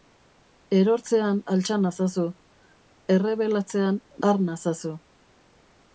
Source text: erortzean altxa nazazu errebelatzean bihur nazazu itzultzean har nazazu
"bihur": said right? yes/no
no